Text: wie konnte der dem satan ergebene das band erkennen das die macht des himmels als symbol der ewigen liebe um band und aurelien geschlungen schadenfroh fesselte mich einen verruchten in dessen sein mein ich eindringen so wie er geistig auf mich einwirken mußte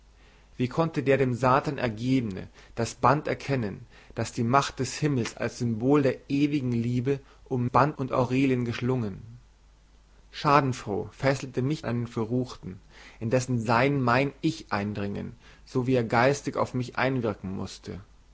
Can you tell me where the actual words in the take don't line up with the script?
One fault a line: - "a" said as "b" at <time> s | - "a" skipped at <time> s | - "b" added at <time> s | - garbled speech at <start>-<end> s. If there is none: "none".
none